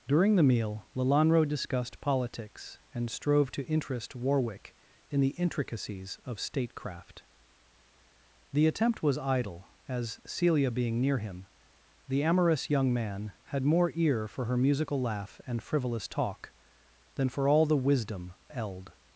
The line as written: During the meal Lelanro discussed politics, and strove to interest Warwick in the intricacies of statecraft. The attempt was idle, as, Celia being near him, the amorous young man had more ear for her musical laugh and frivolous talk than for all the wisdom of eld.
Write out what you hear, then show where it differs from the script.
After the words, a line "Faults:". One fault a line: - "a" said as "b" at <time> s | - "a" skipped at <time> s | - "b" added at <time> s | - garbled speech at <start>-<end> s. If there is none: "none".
During the meal Lelanro discussed politics, and strove to interest Warwick in the intricacies of statecraft. The attempt was idle, as, Celia being near him, the amorous young man had more ear for her musical laugh and frivolous talk than for all the wisdom eld.
Faults:
- "of" skipped at 18.3 s